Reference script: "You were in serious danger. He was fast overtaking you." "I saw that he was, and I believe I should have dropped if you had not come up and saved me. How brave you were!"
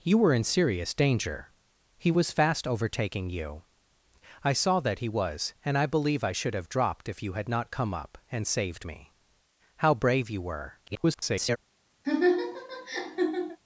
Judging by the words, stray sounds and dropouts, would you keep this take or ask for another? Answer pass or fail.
fail